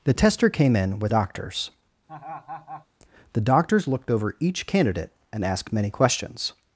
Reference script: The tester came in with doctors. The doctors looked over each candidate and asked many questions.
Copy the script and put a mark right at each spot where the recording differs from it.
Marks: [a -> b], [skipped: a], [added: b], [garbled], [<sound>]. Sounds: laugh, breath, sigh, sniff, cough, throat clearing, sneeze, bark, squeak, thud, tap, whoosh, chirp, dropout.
The tester came in with doctors. [laugh] The doctors looked over each candidate and asked many questions.